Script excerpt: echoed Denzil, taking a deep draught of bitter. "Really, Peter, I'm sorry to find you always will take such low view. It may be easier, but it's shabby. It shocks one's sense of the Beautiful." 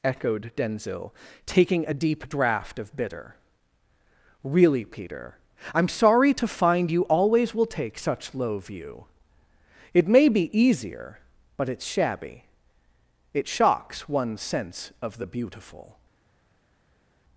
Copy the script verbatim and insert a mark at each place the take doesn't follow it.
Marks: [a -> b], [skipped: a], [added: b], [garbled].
echoed Denzil, taking a deep draught of bitter. "Really, Peter, I'm sorry to find you always will take such low view. It may be easier, but it's shabby. It shocks one's sense of the Beautiful."